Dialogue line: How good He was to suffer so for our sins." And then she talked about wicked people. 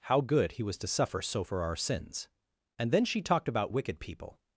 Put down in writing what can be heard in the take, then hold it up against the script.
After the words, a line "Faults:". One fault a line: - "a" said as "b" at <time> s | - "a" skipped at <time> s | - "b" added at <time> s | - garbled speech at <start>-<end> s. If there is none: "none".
How good He was to suffer so for our sins." And then she talked about wicked people.
Faults:
none